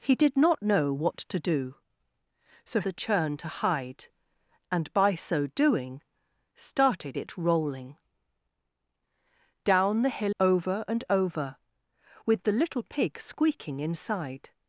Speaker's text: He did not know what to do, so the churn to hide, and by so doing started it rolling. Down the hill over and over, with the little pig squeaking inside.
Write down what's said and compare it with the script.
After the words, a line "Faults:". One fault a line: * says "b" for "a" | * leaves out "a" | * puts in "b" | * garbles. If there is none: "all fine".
He did not know what to do, so the churn to hide, and by so doing started it rolling. Down the hill over and over, with the little pig squeaking inside.
Faults:
all fine